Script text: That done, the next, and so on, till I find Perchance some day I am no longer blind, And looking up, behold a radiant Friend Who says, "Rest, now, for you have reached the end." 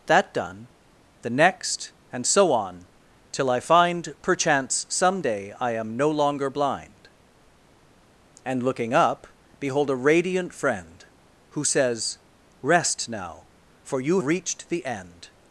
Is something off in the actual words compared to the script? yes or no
yes